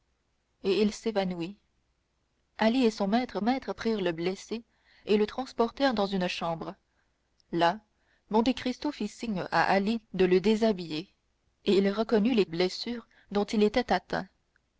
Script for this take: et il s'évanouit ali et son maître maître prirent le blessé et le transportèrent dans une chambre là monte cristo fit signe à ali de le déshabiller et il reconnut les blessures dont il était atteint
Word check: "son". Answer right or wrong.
right